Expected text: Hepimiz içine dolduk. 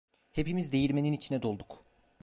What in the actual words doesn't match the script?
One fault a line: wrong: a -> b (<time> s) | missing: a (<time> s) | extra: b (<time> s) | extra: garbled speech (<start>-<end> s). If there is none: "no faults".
extra: değirmenin (0.7 s)